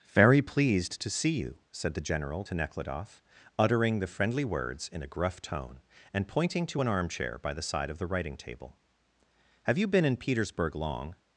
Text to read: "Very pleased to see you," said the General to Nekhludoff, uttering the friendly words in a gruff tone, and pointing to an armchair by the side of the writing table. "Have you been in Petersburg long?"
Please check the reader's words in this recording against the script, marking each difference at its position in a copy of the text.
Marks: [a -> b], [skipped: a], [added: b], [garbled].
"Very pleased to see you," said the General to Nekhludoff, uttering the friendly words in a gruff tone, and pointing to an armchair by the side of the writing table. "Have you been in Petersburg long?"